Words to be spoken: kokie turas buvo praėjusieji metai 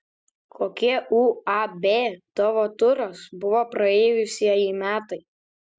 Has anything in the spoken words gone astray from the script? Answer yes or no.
yes